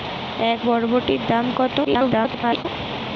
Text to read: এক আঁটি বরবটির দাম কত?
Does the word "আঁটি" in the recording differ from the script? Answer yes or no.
yes